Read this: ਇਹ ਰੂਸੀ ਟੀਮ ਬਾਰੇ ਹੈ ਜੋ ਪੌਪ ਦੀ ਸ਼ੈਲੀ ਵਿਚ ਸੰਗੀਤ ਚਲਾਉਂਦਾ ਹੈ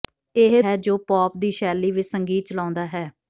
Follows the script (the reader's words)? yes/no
no